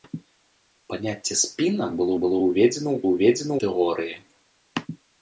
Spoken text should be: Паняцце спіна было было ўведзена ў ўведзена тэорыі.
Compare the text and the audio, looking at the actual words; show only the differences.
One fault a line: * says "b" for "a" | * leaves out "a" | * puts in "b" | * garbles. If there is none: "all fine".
all fine